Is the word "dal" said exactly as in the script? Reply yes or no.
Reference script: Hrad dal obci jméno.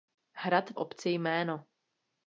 no